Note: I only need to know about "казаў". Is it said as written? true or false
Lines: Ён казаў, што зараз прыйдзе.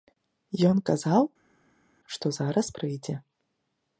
true